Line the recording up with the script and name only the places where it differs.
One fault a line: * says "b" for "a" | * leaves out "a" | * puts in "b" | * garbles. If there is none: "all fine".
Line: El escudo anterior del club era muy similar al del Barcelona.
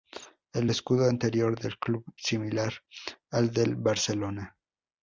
* leaves out "era muy"